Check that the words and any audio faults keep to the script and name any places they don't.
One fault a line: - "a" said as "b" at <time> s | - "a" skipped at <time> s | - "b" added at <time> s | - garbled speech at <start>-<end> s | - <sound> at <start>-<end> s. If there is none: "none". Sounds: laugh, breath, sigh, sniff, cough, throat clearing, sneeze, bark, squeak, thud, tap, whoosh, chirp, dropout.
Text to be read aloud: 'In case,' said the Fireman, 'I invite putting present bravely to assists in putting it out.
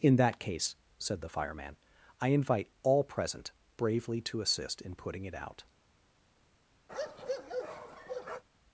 - "that" added at 0.1 s
- "putting" said as "all" at 2.8 s
- "assists" said as "assist" at 4.4 s
- bark at 6.9-8.4 s